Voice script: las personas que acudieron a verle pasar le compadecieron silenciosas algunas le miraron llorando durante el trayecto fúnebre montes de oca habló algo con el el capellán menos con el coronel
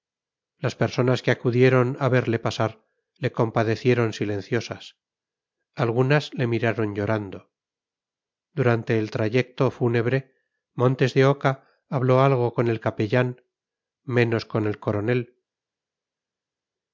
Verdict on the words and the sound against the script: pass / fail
fail